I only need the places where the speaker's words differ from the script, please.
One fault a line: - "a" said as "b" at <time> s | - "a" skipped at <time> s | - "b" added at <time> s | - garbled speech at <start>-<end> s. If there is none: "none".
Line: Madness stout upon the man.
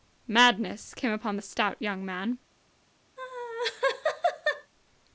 - "stout" said as "came" at 0.9 s
- "stout young" added at 1.4 s